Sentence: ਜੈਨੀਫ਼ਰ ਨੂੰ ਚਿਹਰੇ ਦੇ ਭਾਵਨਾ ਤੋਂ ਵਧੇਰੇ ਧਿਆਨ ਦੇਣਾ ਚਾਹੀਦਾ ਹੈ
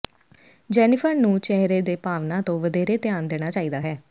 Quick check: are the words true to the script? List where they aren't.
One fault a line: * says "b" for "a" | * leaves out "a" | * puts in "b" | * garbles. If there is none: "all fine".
all fine